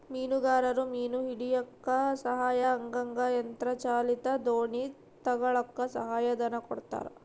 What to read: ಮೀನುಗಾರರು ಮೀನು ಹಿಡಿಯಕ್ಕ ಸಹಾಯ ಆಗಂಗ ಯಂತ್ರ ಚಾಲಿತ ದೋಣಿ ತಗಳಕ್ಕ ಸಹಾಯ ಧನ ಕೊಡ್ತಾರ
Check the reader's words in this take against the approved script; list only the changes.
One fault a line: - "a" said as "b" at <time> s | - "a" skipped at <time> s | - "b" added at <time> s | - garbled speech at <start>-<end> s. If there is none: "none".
none